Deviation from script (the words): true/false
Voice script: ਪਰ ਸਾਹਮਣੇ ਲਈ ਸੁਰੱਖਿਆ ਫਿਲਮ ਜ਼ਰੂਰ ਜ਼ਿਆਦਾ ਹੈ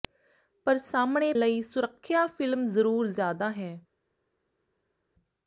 false